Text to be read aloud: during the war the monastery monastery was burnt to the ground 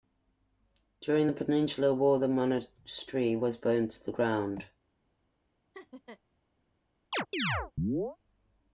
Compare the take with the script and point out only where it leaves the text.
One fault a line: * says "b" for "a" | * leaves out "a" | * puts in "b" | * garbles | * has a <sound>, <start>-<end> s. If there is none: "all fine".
* puts in "peninsular"
* leaves out "monastery"
* has a laugh, 5.7-6.2 s
* has a chirp, 7.1-8.2 s